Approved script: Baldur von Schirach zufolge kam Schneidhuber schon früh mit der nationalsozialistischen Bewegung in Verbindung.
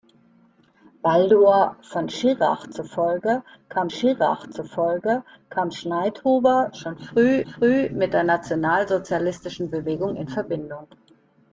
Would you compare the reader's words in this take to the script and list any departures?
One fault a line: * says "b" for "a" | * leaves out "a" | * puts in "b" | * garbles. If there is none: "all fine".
* puts in "Schirach zufolge kam"
* puts in "früh"